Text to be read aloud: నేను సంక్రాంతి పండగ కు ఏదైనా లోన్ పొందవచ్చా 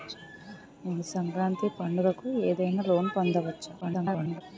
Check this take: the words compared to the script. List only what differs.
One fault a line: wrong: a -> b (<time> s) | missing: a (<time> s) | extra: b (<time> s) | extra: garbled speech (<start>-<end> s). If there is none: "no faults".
extra: garbled speech (3.8-4.4 s)